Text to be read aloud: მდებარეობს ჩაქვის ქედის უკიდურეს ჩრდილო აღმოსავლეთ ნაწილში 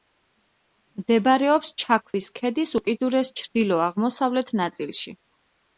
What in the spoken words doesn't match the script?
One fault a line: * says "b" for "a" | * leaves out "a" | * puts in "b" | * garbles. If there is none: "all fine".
all fine